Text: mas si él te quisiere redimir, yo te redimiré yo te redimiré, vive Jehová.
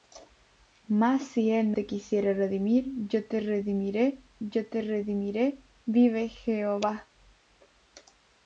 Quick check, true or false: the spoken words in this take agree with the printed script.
true